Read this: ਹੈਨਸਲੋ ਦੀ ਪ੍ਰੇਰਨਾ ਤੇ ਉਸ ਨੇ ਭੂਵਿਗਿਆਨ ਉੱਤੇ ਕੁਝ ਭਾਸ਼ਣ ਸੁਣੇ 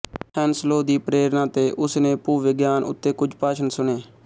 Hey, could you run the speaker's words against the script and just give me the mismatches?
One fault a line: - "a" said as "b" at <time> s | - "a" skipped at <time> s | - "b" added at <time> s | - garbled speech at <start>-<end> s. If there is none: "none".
none